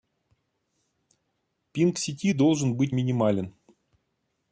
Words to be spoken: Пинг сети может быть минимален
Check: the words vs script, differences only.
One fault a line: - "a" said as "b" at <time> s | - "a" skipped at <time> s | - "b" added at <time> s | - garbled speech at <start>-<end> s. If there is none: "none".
- "может" said as "должен" at 2.3 s